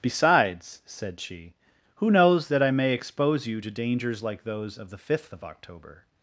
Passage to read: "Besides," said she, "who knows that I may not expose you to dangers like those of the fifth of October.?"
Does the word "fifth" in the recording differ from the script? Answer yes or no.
no